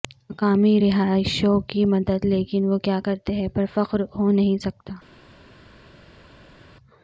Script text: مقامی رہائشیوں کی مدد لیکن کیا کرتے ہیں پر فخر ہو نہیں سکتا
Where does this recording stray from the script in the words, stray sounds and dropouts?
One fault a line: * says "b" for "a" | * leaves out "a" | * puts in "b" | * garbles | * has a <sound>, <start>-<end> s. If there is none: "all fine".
* puts in "وہ"